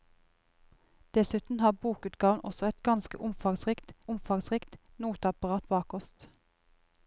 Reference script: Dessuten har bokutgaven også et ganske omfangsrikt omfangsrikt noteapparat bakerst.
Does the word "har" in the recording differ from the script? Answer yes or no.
no